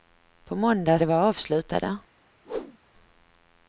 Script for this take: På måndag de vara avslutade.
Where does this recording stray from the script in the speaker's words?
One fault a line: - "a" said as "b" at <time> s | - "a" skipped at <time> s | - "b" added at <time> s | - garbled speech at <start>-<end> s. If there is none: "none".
none